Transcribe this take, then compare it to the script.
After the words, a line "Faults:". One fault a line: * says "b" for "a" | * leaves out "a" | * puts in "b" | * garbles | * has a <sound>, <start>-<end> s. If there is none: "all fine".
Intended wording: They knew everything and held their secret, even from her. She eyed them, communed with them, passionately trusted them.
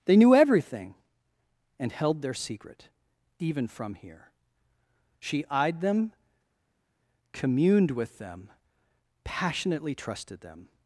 They knew everything and held their secret, even from here. She eyed them, communed with them, passionately trusted them.
Faults:
* says "here" for "her"